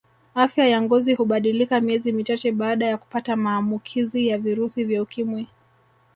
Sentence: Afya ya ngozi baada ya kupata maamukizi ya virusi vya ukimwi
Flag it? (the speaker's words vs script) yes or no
yes